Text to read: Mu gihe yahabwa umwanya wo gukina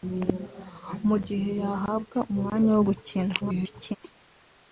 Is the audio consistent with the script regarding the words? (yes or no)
no